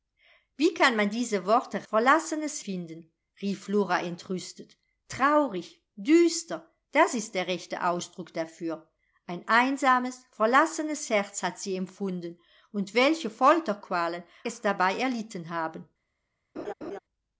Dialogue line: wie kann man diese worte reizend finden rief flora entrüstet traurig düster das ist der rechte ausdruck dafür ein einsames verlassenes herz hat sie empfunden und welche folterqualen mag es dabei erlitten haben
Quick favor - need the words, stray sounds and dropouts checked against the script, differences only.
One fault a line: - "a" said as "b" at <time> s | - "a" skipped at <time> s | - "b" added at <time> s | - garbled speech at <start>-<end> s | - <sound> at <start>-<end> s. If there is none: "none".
- "reizend" said as "verlassenes" at 1.9 s
- "mag" skipped at 14.2 s
- laugh at 16.6-17.0 s